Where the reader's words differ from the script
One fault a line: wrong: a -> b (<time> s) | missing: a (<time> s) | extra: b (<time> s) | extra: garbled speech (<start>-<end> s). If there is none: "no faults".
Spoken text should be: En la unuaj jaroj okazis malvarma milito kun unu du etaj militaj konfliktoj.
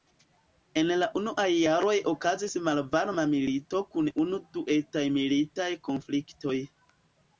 no faults